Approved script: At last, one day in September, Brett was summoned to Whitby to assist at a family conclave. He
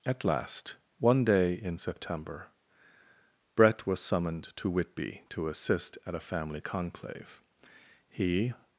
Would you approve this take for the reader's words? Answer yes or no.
yes